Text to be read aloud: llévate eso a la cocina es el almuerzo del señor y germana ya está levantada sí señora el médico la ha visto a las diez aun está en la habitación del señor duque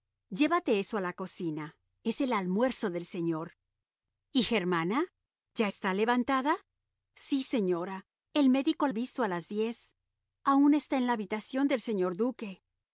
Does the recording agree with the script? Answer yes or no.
no